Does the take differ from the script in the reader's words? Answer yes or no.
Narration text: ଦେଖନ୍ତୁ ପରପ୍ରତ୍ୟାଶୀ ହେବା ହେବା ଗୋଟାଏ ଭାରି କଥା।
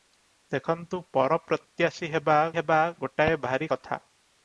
no